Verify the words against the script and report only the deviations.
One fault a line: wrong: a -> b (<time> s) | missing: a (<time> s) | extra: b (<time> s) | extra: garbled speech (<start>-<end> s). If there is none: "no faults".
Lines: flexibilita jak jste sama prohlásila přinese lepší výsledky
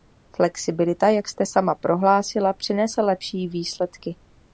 no faults